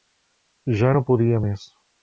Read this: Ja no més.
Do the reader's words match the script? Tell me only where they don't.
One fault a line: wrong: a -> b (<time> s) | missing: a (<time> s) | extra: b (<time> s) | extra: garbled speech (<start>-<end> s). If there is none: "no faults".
extra: podia (1.1 s)